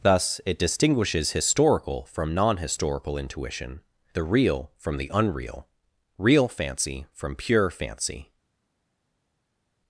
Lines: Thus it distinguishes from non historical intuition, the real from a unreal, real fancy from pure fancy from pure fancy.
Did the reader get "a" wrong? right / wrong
wrong